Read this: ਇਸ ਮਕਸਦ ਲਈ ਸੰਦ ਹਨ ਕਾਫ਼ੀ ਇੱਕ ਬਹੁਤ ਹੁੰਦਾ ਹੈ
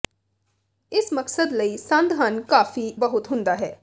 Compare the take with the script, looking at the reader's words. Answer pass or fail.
fail